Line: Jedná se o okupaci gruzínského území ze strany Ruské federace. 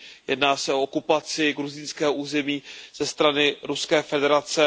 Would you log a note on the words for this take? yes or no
no